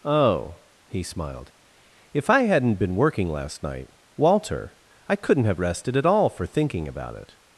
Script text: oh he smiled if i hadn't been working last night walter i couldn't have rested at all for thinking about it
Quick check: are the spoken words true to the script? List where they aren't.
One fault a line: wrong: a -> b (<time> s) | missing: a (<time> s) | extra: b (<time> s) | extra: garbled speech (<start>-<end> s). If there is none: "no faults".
no faults